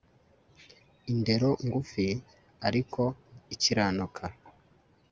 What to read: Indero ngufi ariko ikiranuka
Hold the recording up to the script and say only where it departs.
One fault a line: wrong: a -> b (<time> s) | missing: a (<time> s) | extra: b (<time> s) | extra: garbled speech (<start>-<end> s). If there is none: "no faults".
no faults